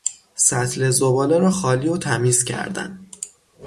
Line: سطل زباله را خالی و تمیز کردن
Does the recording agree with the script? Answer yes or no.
yes